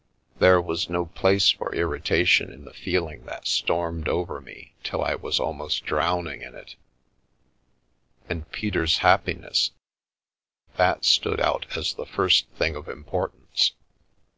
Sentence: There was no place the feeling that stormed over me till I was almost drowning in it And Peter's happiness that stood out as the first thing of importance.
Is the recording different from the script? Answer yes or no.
yes